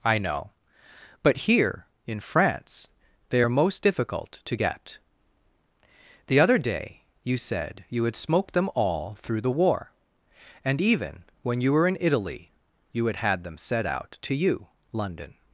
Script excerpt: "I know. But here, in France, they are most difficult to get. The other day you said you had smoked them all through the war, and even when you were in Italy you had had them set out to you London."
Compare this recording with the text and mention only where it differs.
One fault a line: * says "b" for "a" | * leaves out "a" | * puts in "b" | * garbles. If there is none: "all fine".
all fine